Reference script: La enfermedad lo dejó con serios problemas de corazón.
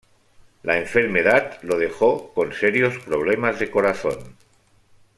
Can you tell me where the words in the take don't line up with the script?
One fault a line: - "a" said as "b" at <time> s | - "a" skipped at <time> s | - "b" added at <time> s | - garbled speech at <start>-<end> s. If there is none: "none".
none